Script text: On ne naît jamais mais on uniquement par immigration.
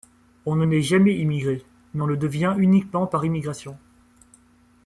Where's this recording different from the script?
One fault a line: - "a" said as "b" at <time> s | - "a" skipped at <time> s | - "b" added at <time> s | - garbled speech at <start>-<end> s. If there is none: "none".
- "immigré" added at 1.2 s
- "le devient" added at 2.0 s